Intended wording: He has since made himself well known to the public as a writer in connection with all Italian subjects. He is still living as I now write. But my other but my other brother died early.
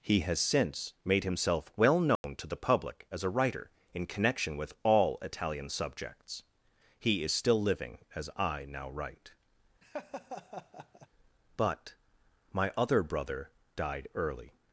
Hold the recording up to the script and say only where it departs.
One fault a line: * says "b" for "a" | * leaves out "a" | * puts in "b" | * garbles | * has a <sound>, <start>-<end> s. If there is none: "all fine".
* has a dropout, 2.2-2.2 s
* has a laugh, 9.8-11.1 s
* leaves out "but my other"